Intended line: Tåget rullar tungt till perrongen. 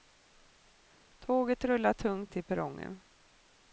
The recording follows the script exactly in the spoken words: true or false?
true